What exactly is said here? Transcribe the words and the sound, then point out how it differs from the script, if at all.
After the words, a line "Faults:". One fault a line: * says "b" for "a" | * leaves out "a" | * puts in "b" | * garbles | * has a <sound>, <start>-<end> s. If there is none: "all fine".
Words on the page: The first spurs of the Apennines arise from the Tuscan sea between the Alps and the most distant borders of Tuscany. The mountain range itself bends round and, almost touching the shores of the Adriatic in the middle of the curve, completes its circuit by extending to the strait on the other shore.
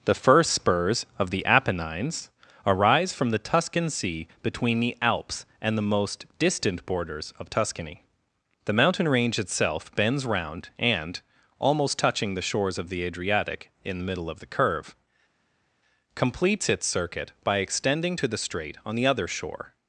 The first spurs of the Apennines arise from the Tuscan sea between the Alps and the most distant borders of Tuscany. The mountain range itself bends round and, almost touching the shores of the Adriatic in the middle of the curve, completes its circuit by extending to the strait on the other shore.
Faults:
all fine